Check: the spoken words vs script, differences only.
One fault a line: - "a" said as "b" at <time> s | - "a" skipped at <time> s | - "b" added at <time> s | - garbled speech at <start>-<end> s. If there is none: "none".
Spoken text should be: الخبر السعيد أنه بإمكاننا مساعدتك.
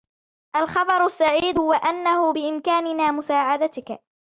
- "هو" added at 1.6 s